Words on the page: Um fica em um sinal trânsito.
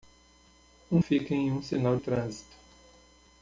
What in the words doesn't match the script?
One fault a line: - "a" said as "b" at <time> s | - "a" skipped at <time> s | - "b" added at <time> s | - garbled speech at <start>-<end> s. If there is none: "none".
none